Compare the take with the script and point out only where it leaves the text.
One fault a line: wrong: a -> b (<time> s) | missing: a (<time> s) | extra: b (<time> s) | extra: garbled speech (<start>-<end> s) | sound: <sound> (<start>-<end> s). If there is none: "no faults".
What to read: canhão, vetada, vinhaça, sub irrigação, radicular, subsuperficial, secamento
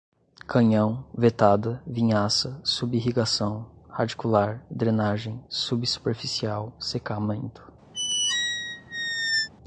extra: drenagem (4.7 s)
sound: squeak (7.9-9.5 s)